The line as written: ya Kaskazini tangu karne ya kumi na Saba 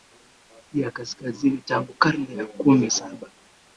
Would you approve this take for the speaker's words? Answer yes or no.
no